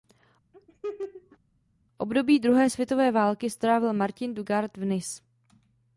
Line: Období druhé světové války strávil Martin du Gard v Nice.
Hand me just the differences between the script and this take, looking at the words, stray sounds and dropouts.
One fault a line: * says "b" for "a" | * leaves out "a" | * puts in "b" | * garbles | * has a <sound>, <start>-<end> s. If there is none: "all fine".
* has a laugh, 0.5-1.4 s